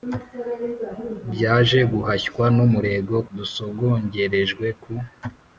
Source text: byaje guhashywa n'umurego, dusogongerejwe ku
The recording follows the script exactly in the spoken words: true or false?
true